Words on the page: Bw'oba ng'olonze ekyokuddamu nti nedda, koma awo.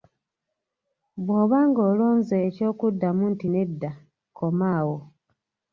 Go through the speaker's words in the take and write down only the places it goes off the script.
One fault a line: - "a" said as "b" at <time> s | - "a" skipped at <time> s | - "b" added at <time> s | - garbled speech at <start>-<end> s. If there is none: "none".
none